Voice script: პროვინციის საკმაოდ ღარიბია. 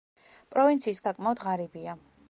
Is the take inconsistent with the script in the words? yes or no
no